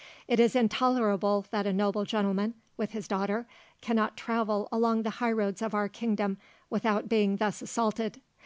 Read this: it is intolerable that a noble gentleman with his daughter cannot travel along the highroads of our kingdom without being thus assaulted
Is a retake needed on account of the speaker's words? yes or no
no